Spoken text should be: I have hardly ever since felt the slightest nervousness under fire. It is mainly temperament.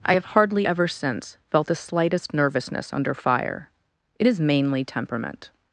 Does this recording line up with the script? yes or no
yes